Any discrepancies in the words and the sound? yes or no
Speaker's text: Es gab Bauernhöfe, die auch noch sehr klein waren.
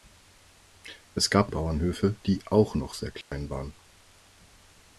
yes